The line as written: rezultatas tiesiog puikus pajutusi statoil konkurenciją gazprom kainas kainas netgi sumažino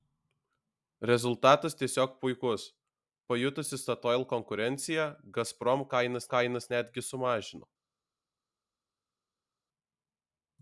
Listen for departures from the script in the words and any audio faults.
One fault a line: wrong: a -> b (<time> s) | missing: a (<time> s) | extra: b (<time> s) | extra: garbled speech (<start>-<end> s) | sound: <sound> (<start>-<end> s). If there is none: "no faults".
no faults